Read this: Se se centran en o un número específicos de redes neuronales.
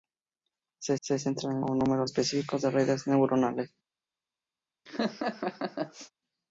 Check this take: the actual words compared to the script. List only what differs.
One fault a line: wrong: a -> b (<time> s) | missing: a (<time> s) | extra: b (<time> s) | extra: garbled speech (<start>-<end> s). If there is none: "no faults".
no faults